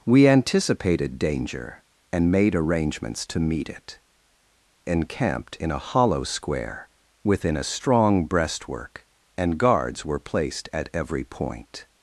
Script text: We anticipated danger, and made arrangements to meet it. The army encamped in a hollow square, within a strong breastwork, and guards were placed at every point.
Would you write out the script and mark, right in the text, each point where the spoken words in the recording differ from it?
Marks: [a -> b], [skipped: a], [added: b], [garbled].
We anticipated danger, and made arrangements to meet it. [skipped: The army] encamped in a hollow square, within a strong breastwork, and guards were placed at every point.